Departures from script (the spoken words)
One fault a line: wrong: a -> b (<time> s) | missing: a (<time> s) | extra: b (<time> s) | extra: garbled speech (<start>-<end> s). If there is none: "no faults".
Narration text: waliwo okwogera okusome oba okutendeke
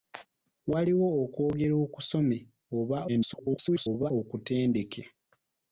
extra: garbled speech (3.1-4.1 s)